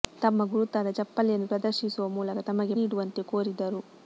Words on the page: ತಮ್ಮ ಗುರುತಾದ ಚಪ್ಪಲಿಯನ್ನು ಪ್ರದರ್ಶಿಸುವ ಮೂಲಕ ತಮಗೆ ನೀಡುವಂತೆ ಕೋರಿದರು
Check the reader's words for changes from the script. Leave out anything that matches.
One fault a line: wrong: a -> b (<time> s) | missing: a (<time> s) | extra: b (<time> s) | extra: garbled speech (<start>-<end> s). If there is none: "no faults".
no faults